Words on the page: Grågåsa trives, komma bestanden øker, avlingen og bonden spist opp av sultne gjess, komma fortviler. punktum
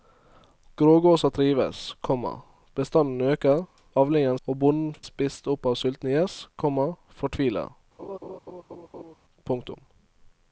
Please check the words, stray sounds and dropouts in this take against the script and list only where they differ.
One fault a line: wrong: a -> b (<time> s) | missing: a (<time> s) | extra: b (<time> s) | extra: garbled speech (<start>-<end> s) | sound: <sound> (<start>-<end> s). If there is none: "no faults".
sound: laugh (8.0-9.1 s)